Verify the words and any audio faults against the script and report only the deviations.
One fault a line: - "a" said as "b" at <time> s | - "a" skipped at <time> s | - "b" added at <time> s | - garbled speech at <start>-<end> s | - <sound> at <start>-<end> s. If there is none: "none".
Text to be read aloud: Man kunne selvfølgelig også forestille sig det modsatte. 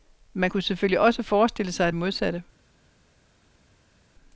none